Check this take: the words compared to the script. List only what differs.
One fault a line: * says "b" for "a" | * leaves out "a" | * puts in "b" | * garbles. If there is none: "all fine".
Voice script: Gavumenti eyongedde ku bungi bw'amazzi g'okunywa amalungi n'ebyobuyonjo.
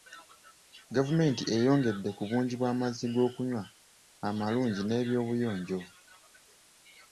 all fine